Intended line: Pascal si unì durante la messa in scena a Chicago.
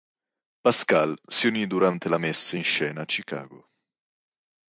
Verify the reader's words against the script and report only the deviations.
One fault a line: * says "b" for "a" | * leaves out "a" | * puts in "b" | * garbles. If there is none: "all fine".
all fine